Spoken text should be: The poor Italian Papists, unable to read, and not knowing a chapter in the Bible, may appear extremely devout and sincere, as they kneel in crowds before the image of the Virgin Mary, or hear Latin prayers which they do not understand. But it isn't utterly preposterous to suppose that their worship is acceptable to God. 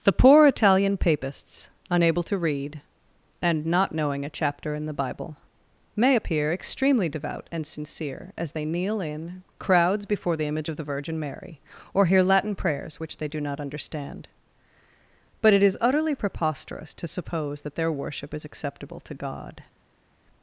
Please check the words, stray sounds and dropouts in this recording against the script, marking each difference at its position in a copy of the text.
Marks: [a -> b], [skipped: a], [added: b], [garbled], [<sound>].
The poor Italian Papists, unable to read, and not knowing a chapter in the Bible, may appear extremely devout and sincere, as they kneel in crowds before the image of the Virgin Mary, or hear Latin prayers which they do not understand. But it [isn't -> is] utterly preposterous to suppose that their worship is acceptable to God.